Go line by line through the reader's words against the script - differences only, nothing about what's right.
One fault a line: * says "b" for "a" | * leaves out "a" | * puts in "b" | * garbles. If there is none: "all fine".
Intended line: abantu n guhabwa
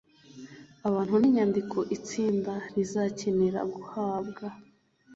* puts in "inyandiko itsinda rizakenera"